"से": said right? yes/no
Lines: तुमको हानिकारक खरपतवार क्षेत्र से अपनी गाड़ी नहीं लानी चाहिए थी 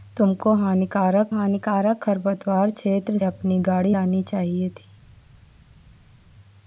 no